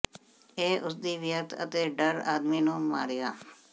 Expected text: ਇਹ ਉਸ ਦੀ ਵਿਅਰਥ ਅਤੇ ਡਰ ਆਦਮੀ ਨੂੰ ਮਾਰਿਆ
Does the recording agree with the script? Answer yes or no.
yes